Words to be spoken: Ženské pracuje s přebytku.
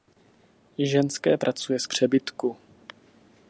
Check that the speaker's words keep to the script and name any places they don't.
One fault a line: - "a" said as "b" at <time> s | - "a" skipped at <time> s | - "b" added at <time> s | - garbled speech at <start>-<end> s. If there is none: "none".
none